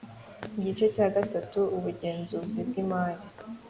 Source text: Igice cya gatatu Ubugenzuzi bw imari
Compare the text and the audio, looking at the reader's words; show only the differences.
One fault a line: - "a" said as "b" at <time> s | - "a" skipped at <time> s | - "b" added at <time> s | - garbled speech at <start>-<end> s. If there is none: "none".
none